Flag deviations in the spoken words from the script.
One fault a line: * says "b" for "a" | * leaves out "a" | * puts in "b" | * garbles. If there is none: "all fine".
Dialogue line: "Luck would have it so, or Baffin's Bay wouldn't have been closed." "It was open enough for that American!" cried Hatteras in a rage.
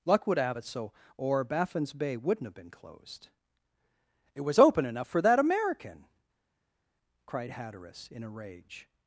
all fine